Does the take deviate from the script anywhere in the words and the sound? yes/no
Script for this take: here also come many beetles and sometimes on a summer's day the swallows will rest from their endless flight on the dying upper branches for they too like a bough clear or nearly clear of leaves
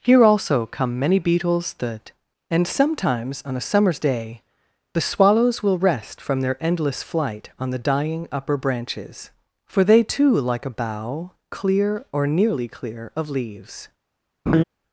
yes